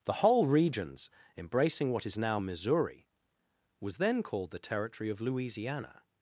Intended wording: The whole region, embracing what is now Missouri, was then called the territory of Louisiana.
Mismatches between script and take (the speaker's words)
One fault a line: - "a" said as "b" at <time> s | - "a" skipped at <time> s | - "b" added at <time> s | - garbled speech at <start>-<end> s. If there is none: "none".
- "region" said as "regions" at 0.5 s